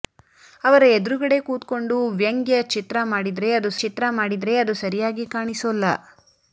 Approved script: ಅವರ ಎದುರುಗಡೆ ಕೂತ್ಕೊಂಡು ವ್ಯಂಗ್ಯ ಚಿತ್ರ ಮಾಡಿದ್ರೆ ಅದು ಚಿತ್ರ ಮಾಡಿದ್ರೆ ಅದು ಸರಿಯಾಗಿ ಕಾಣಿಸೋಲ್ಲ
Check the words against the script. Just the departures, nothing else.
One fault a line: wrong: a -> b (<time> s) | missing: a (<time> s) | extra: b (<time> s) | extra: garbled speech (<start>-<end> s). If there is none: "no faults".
no faults